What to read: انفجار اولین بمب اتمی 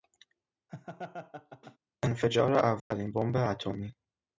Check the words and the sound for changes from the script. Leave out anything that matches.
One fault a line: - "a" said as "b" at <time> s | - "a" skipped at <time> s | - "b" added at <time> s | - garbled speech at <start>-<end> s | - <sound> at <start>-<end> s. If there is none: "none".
- laugh at 0.7-1.8 s
- dropout at 2.8-2.9 s